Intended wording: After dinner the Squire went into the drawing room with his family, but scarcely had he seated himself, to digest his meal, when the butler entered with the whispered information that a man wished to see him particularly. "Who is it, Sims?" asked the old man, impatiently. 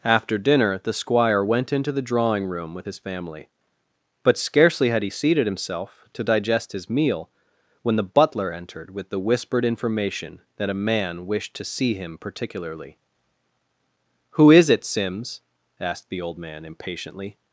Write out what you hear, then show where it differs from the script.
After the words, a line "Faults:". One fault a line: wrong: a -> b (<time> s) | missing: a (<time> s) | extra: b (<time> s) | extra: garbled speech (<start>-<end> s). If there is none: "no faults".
After dinner the Squire went into the drawing room with his family, but scarcely had he seated himself, to digest his meal, when the butler entered with the whispered information that a man wished to see him particularly. "Who is it, Sims?" asked the old man, impatiently.
Faults:
no faults